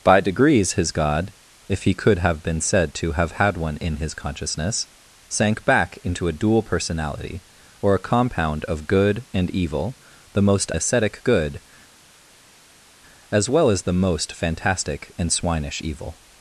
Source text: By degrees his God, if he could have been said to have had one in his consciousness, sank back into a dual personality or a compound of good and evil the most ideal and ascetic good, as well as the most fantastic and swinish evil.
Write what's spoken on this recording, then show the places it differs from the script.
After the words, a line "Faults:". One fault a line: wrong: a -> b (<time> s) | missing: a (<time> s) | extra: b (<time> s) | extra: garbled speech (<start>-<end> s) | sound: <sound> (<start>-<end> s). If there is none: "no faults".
By degrees his God, if he could have been said to have had one in his consciousness, sank back into a dual personality or a compound of good and evil the most ascetic good, as well as the most fantastic and swinish evil.
Faults:
missing: ideal and (10.7 s)